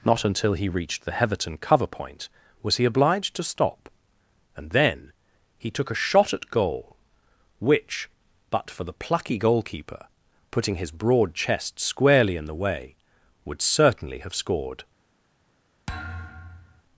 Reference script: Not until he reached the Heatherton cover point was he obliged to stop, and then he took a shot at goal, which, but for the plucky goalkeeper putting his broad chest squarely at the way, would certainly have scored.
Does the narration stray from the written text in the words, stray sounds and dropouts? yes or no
yes